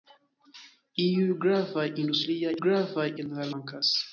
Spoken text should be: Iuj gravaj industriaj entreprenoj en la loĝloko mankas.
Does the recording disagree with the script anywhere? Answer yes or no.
yes